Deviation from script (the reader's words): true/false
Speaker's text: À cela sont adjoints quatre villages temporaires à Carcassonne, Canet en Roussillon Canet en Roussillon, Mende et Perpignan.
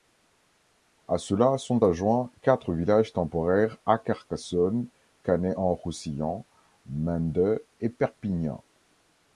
true